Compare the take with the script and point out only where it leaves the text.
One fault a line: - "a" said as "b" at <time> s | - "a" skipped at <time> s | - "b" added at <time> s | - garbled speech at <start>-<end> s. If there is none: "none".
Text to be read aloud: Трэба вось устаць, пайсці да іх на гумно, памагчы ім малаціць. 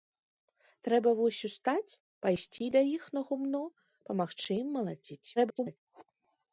- garbled speech at 5.4-5.8 s